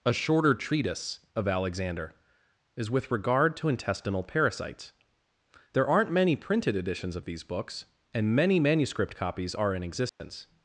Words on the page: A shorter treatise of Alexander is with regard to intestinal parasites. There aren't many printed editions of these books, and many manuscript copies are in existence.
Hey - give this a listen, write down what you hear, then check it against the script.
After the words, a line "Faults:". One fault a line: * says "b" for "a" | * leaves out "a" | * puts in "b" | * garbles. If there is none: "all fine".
A shorter treatise of Alexander is with regard to intestinal parasites. There aren't many printed editions of these books, and many manuscript copies are in existence.
Faults:
all fine